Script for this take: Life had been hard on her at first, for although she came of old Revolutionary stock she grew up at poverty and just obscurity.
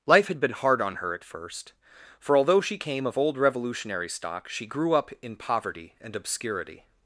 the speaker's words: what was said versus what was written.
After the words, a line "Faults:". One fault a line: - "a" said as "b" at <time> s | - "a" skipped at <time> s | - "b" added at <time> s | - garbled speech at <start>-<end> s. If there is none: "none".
Life had been hard on her at first, for although she came of old Revolutionary stock she grew up in poverty and obscurity.
Faults:
- "at" said as "in" at 5.2 s
- "just" skipped at 6.2 s